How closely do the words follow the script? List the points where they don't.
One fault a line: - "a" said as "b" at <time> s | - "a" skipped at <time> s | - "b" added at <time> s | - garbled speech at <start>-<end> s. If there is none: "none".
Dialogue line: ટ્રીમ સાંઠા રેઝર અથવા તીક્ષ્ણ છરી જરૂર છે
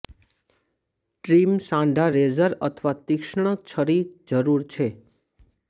none